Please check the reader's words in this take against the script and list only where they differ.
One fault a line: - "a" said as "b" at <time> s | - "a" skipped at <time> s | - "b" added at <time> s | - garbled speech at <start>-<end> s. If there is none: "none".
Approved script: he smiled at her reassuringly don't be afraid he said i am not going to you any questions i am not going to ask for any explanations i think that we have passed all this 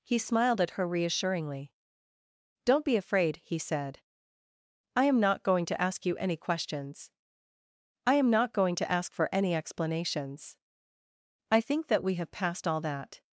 - "ask" added at 5.8 s
- "this" said as "that" at 12.8 s